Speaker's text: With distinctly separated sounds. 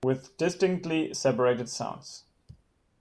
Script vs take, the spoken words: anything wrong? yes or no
no